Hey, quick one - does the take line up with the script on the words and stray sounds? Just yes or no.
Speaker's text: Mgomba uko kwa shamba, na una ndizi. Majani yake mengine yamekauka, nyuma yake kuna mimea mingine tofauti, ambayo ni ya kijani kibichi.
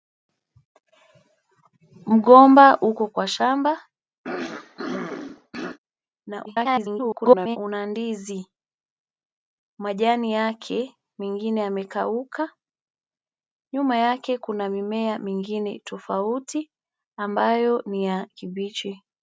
no